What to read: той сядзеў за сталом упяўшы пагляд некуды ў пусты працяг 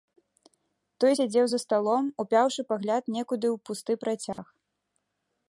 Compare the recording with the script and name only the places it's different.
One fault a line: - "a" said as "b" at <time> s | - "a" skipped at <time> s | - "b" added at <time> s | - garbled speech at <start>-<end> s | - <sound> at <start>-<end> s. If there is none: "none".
- dropout at 4.3-4.4 s